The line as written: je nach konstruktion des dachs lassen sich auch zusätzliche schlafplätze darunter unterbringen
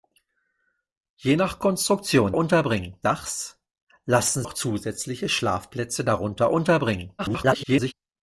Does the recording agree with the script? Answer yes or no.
no